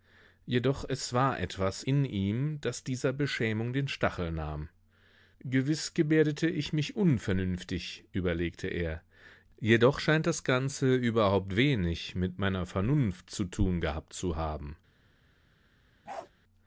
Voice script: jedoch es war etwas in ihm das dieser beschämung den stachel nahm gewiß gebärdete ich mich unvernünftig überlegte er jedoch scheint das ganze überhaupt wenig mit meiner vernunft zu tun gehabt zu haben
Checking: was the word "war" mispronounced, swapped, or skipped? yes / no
no